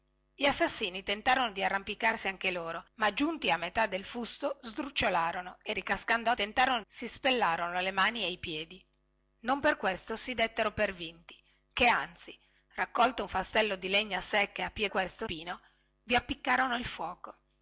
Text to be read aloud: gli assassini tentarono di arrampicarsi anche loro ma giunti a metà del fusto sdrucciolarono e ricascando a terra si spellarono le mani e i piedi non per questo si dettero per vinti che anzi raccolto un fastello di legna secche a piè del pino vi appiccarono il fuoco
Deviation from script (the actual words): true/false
true